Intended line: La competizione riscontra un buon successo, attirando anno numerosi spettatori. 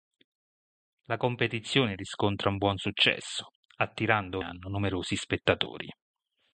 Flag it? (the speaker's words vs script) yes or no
no